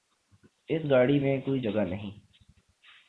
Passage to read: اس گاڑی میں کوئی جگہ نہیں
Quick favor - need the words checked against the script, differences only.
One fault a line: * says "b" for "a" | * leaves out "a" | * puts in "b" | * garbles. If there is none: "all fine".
all fine